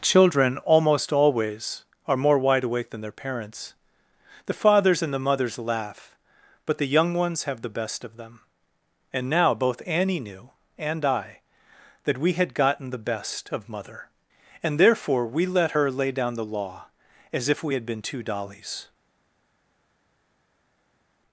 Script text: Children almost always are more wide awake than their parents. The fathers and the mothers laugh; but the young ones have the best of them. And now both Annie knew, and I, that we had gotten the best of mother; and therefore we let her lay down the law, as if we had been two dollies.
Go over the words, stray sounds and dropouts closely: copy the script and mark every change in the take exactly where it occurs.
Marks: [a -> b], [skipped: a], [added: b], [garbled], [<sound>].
Children almost always are more wide awake than their parents. The fathers and the mothers laugh; but the young ones have the best of them. And now both Annie knew, and I, that we had gotten the best of mother; and therefore we let her lay down the law, as if we had been two dollies.